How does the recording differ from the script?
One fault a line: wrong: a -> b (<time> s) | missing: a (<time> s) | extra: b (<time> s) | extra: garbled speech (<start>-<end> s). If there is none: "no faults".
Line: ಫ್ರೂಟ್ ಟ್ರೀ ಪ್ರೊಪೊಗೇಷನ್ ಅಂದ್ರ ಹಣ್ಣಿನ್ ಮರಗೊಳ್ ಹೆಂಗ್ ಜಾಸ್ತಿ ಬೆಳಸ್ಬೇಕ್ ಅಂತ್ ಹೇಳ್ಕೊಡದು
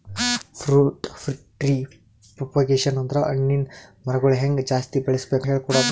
missing: ಅಂತ್ (5.5 s)